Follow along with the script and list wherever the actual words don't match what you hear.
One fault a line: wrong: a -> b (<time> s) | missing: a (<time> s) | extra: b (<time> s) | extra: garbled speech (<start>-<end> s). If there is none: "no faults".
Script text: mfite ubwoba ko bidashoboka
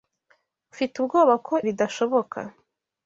no faults